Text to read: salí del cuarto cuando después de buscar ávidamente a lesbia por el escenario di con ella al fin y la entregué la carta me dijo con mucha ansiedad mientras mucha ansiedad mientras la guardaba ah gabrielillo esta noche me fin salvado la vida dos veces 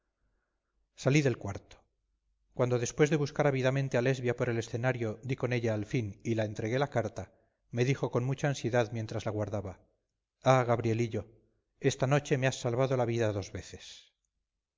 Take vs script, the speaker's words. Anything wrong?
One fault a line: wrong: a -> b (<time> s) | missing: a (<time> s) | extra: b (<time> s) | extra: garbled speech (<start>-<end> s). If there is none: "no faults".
missing: mucha ansiedad mientras (9.3 s)
wrong: fin -> has (12.5 s)